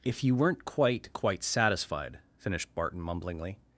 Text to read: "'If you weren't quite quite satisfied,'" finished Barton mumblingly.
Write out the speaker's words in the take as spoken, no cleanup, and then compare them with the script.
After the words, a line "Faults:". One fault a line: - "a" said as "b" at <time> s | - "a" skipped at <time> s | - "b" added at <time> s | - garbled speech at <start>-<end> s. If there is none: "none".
"'If you weren't quite quite satisfied,'" finished Barton mumblingly.
Faults:
none